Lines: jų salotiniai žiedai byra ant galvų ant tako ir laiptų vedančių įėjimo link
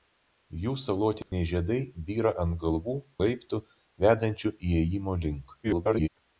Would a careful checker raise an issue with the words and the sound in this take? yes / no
yes